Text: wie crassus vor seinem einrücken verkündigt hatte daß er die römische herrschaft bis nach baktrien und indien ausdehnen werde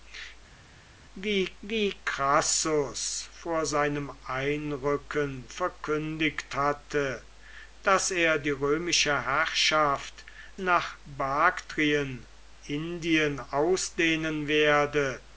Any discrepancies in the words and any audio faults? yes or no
yes